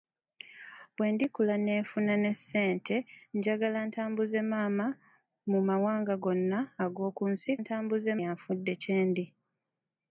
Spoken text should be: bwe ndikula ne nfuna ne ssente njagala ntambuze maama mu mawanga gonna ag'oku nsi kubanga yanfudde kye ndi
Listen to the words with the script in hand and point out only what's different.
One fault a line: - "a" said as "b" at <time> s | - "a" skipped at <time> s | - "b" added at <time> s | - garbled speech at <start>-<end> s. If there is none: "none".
- "kubanga" said as "ntambuze" at 7.6 s